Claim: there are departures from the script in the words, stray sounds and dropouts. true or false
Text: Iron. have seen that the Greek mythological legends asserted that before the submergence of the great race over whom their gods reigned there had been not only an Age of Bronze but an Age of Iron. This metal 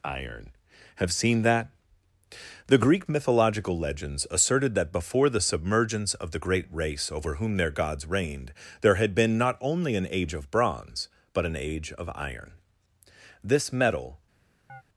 true